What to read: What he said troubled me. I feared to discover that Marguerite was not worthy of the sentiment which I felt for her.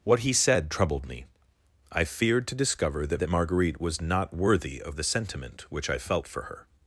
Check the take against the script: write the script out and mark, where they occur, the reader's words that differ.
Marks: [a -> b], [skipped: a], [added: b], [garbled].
What he said troubled me. I feared to discover that [added: that] Marguerite was not worthy of the sentiment which I felt for her.